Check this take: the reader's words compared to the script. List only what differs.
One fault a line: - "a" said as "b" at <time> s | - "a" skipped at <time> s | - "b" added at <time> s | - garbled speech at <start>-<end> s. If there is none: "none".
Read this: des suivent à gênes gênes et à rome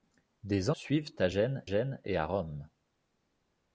none